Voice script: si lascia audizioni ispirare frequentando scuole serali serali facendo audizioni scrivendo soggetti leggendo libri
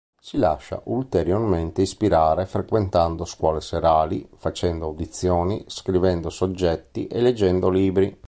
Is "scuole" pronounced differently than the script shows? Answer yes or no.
no